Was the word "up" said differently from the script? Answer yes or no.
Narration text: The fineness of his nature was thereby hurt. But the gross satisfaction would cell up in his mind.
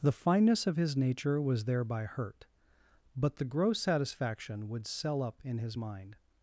no